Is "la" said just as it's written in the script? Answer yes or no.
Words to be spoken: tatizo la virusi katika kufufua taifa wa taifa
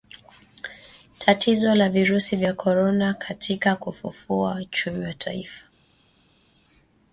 yes